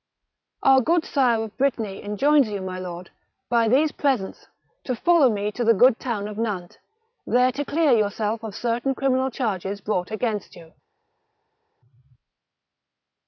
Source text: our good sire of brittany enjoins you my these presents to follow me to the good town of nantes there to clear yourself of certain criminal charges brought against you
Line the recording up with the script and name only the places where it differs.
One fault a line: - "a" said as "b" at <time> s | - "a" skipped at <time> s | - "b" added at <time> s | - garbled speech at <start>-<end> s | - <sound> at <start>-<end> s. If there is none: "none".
- "lord by" added at 2.8 s